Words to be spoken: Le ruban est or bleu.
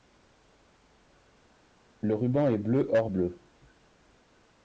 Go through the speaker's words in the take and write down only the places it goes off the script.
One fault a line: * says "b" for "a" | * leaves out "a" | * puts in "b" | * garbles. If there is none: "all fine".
* puts in "bleu"